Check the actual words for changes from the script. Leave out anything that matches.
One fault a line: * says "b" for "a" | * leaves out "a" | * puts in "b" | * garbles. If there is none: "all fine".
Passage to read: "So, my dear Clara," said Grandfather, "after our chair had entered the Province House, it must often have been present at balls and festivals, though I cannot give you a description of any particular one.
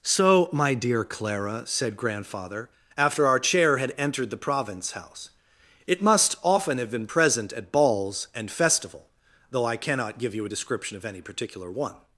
* says "festival" for "festivals"